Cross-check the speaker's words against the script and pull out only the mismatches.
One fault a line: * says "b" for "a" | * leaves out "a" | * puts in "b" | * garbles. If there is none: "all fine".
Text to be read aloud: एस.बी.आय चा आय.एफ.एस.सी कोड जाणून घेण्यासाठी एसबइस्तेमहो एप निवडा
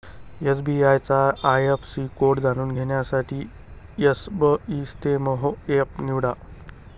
all fine